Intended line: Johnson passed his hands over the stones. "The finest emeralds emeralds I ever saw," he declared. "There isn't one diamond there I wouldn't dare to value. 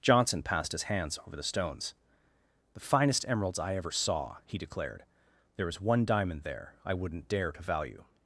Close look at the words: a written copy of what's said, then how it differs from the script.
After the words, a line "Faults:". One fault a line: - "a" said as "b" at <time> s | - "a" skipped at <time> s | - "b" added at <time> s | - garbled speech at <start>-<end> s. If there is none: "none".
Johnson passed his hands over the stones. "The finest emeralds I ever saw," he declared. "There is one diamond there I wouldn't dare to value.
Faults:
- "emeralds" skipped at 3.6 s
- "isn't" said as "is" at 5.7 s